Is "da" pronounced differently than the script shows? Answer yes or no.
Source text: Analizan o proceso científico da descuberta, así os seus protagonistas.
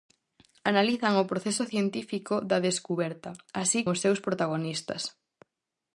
no